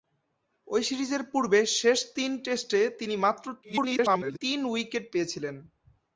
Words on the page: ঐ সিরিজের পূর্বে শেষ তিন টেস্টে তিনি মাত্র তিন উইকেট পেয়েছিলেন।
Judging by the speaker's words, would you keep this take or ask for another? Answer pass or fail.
fail